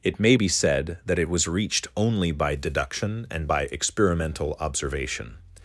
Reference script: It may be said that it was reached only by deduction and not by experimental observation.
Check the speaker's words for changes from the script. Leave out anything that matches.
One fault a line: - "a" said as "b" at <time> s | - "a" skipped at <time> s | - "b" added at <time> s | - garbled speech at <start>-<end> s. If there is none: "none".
- "not" skipped at 3.5 s